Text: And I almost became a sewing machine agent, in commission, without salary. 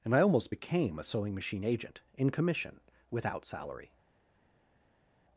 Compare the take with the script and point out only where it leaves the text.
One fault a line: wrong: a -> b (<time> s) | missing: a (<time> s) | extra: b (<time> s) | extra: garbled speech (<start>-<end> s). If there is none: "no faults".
no faults